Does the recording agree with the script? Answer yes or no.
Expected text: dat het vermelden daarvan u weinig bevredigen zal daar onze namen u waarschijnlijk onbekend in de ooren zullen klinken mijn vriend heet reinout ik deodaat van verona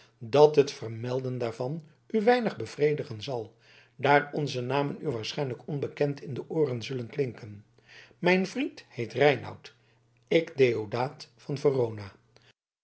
yes